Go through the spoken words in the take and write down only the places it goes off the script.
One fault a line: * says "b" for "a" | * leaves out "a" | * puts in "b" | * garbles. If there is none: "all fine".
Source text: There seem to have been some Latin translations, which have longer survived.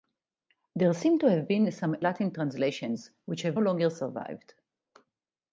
all fine